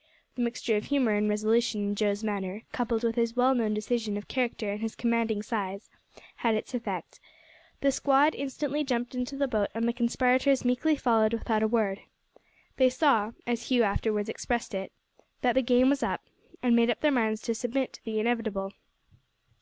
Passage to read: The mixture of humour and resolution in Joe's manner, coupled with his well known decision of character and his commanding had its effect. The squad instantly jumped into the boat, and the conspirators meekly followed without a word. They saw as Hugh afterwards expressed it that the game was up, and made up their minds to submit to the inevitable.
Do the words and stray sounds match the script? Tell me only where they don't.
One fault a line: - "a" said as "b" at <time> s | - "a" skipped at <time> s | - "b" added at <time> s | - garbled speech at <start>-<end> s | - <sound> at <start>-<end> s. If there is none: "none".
- "size" added at 5.4 s